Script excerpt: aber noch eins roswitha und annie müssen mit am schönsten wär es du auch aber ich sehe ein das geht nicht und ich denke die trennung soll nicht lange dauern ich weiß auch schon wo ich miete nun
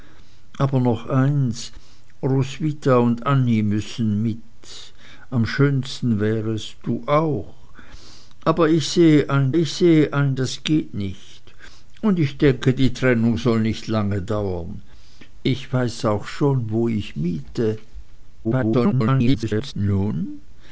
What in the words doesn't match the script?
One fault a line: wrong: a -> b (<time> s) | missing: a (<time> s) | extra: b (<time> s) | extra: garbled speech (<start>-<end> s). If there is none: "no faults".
extra: ich sehe ein (9.5 s)
extra: garbled speech (18.4-19.7 s)